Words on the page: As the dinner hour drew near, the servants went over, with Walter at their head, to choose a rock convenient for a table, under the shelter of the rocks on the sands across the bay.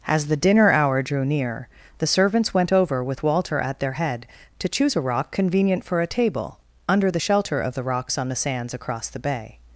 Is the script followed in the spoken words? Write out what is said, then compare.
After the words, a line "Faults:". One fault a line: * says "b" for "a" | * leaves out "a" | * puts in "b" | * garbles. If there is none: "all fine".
As the dinner hour drew near, the servants went over, with Walter at their head, to choose a rock convenient for a table, under the shelter of the rocks on the sands across the bay.
Faults:
all fine